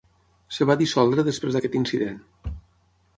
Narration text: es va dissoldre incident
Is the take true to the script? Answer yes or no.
no